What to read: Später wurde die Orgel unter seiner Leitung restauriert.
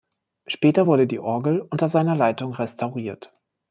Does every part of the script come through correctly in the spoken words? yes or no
yes